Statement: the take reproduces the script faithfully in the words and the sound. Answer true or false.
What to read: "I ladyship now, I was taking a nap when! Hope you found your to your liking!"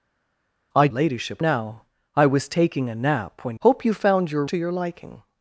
true